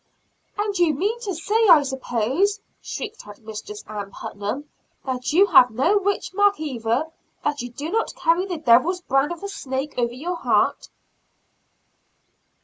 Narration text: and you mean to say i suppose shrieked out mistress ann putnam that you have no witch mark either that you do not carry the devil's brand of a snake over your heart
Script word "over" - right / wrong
right